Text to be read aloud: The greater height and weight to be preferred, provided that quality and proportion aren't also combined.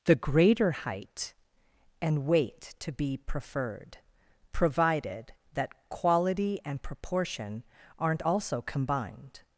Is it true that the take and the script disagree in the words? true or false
false